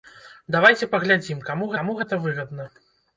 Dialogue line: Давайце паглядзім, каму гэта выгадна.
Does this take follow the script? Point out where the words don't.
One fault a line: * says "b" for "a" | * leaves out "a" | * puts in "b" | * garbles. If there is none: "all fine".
* puts in "каму"